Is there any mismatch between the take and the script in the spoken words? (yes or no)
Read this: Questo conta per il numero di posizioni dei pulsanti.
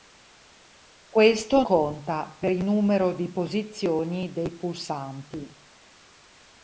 no